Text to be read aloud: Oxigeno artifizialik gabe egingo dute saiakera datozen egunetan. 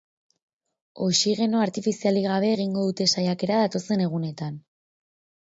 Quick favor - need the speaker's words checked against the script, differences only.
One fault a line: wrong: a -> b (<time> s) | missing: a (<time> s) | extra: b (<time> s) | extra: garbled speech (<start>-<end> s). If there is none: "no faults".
no faults